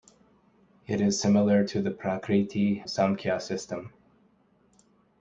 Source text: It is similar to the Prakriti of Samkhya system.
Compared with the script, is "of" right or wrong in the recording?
wrong